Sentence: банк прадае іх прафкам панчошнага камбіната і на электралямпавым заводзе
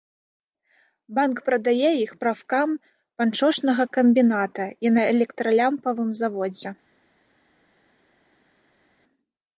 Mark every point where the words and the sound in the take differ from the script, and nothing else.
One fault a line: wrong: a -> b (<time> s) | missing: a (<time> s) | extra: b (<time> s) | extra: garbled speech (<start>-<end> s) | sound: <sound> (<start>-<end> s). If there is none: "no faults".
no faults